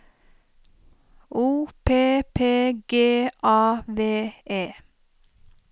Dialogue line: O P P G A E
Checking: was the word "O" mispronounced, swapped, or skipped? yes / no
no